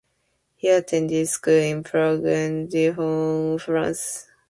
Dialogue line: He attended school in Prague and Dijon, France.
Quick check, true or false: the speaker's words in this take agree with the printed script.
true